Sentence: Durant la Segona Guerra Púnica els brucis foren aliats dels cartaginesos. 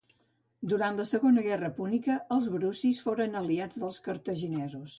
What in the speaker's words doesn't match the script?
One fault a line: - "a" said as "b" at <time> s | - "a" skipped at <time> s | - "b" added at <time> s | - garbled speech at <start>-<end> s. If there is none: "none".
none